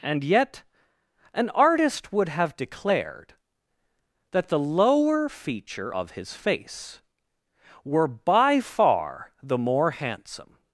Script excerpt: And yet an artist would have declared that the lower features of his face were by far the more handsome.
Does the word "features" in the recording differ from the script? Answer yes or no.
yes